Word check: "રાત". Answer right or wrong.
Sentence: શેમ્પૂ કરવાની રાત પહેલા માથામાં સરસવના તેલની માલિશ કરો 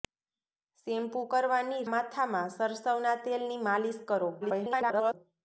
wrong